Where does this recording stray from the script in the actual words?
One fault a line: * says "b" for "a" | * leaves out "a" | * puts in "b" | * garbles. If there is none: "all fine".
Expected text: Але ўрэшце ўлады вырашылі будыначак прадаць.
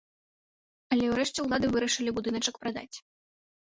all fine